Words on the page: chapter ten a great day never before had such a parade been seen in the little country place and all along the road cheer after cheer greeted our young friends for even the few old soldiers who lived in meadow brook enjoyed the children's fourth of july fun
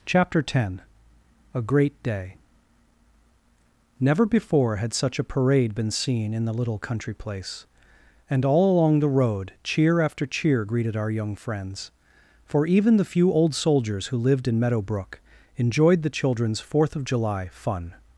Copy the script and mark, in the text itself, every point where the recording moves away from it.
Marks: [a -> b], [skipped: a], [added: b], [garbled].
chapter ten a great day never before had such a parade been seen in the little country place and all along the road cheer after cheer greeted our young friends for even the few old soldiers who lived in meadow brook enjoyed the children's fourth of july fun